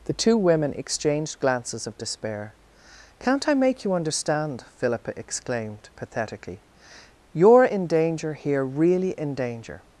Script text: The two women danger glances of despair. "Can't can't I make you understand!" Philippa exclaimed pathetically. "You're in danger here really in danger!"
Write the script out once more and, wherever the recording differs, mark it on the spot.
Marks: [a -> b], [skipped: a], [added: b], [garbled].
The two women [danger -> exchanged] glances of despair. "Can't [skipped: can't] I make you understand!" Philippa exclaimed pathetically. "You're in danger here really in danger!"